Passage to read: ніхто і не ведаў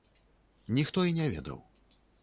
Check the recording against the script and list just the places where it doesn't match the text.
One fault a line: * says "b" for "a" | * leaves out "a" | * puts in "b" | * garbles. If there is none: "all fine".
all fine